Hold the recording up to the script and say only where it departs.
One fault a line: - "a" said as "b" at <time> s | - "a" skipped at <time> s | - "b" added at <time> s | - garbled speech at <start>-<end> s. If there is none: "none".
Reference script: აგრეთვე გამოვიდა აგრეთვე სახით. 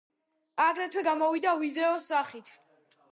- "აგრეთვე" said as "ვიდეოს" at 1.6 s